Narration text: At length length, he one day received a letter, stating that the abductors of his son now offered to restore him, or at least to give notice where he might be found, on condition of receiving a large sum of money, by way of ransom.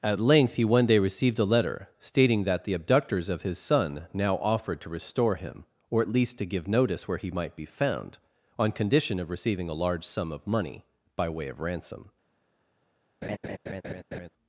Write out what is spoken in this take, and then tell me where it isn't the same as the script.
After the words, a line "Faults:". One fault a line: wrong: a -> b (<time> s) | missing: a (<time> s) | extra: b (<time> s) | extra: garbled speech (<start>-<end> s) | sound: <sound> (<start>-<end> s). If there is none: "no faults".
At length, he one day received a letter, stating that the abductors of his son now offered to restore him, or at least to give notice where he might be found, on condition of receiving a large sum of money, by way of ransom.
Faults:
missing: length (0.6 s)
sound: laugh (13.2-14.3 s)